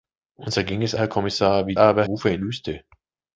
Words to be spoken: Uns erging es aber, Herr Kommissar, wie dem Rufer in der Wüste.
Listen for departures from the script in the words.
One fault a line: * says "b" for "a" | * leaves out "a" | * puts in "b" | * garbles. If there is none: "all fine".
* leaves out "aber"
* says "aber" for "dem"
* leaves out "der"